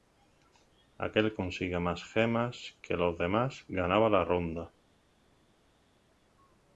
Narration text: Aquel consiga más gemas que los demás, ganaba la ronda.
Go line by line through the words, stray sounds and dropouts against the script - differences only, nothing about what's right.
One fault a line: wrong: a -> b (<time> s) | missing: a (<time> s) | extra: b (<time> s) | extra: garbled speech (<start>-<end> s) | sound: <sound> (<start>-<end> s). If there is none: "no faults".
no faults